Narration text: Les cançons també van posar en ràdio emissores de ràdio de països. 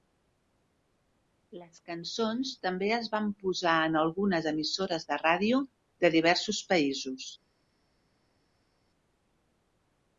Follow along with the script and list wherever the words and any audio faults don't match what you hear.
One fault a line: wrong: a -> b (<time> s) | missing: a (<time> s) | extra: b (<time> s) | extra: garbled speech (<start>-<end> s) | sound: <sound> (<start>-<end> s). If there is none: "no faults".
extra: es (3.0 s)
wrong: ràdio -> algunes (4.0 s)
extra: diversos (6.2 s)